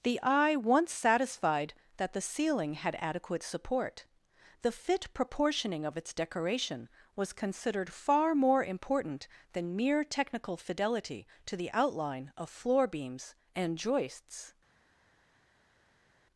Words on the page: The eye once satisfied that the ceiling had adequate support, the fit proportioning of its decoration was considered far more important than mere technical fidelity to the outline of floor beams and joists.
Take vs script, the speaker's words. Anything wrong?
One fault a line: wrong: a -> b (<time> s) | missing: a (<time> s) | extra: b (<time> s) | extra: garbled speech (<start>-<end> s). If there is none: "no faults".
no faults